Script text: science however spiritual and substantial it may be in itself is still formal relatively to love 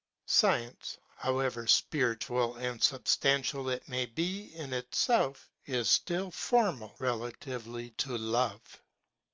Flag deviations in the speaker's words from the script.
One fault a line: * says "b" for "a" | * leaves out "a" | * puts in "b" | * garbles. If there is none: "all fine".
all fine